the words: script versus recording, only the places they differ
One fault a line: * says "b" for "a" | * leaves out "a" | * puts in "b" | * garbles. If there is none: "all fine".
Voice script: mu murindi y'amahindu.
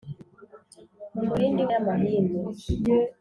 all fine